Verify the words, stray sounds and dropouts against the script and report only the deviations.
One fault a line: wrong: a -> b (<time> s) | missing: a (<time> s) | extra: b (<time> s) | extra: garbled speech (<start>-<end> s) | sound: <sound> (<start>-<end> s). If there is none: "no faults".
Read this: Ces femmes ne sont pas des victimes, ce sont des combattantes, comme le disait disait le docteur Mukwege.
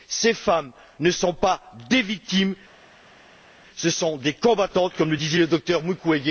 missing: disait (5.4 s)